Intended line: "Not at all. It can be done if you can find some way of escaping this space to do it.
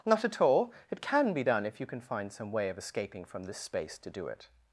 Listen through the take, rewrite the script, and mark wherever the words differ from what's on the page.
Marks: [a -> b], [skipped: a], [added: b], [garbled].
"Not at all. It can be done if you can find some way of escaping [added: from] this space to do it.